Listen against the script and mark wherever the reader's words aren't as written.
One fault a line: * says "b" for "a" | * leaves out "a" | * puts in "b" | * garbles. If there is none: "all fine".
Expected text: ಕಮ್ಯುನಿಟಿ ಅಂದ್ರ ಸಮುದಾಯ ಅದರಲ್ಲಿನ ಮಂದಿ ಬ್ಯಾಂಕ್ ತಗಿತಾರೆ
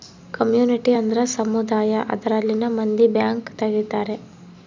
all fine